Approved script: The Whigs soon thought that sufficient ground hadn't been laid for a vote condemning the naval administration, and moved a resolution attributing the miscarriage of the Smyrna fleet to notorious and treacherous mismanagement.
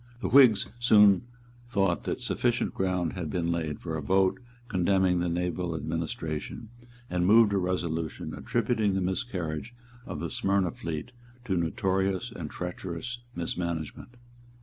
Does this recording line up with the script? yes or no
no